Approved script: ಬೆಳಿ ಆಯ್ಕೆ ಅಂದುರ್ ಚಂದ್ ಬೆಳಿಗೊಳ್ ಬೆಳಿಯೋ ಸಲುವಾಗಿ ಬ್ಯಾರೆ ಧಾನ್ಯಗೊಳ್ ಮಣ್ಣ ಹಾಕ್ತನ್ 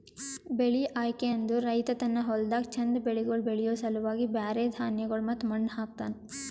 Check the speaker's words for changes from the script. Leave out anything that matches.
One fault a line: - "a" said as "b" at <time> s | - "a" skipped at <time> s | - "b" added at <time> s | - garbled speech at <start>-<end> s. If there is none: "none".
- "ರೈತ ತನ್ನ ಹೊಲ್ದಾಗ್" added at 1.6 s
- "ಮತ್ತ" added at 5.3 s